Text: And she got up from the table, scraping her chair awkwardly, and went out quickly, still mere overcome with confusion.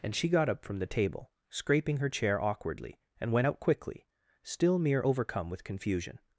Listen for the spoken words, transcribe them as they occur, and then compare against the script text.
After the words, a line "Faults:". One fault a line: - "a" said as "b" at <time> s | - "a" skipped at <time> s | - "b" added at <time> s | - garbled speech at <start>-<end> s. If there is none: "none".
And she got up from the table, scraping her chair awkwardly, and went out quickly, still mere overcome with confusion.
Faults:
none